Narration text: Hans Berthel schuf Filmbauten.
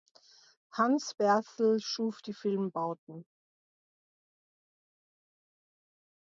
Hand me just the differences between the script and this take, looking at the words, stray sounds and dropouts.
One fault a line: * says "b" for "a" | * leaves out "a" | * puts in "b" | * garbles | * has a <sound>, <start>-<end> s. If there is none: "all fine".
* puts in "die"